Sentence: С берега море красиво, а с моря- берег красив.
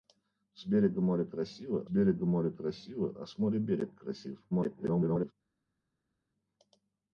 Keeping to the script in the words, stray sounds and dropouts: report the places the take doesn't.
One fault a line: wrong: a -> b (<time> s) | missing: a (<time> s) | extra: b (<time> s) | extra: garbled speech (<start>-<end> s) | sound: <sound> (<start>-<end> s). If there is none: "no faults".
extra: берега море красиво (1.9 s)
extra: garbled speech (4.5-5.3 s)